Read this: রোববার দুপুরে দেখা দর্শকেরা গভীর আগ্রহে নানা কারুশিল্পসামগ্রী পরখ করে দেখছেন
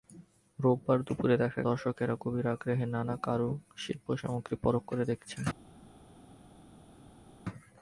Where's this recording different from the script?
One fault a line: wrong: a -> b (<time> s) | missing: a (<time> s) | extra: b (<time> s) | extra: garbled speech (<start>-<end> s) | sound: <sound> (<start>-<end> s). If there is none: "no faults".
no faults